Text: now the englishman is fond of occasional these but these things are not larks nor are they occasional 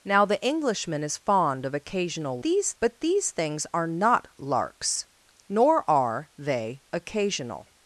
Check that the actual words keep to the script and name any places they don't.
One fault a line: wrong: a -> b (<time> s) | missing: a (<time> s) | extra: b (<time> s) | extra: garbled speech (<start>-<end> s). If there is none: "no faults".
no faults